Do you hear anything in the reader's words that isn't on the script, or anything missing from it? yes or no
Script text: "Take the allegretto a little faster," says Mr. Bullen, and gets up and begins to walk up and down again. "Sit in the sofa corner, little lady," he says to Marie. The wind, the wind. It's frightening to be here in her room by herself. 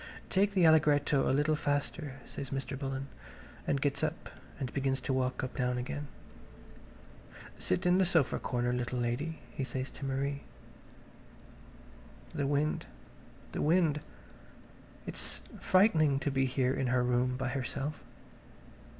yes